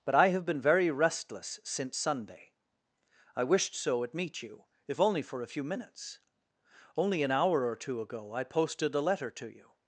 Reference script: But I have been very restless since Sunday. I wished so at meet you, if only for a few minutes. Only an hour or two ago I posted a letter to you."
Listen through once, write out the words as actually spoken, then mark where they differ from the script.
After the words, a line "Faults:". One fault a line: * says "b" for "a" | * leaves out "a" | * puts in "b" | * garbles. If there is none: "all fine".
But I have been very restless since Sunday. I wished so at meet you, if only for a few minutes. Only an hour or two ago I posted a letter to you."
Faults:
all fine